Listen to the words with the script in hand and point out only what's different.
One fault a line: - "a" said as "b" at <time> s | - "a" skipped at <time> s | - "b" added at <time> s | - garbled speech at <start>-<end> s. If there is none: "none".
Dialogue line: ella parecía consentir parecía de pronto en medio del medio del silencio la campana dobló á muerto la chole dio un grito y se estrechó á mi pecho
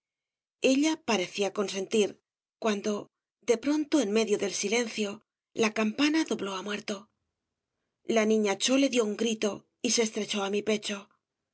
- "parecía" said as "cuando" at 2.6 s
- "medio del" skipped at 4.5 s
- "niña" added at 8.3 s